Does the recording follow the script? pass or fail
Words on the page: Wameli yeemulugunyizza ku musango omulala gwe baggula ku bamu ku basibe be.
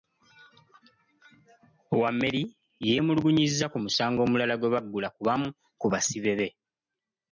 pass